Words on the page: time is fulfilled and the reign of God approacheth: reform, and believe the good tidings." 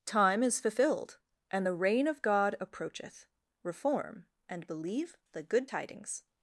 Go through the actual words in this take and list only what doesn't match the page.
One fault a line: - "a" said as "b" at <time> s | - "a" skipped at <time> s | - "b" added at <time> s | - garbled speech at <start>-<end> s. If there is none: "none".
none